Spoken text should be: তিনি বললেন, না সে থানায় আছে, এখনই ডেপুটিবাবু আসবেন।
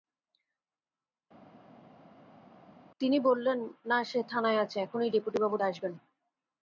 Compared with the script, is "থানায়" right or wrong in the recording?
right